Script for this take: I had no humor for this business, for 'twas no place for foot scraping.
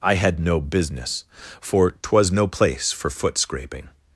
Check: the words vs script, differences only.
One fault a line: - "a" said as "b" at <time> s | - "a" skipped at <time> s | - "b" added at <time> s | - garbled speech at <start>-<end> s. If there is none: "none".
- "humor for this" skipped at 0.6 s